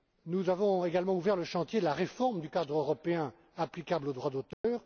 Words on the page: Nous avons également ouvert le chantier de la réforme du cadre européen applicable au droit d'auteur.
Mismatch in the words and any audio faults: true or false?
true